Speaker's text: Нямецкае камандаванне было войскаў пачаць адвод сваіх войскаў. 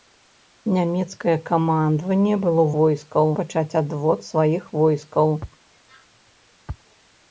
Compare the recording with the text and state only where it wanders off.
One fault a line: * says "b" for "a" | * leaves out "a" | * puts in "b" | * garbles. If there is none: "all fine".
all fine